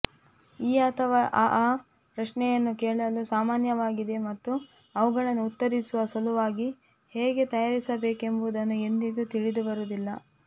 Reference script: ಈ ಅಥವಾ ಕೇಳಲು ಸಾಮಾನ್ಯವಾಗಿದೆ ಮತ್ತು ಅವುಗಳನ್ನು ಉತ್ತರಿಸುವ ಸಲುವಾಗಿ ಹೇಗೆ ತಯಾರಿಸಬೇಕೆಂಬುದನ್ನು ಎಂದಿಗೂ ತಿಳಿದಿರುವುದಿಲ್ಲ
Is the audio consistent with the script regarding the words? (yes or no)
no